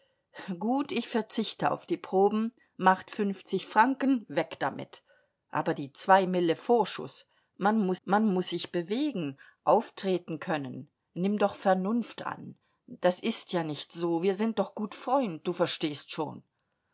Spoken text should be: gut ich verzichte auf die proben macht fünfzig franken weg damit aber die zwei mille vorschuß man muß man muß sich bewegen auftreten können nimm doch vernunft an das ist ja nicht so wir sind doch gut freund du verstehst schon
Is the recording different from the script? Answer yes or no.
no